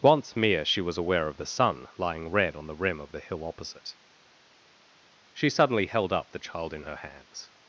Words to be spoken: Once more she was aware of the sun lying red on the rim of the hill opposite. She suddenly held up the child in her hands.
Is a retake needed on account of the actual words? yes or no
yes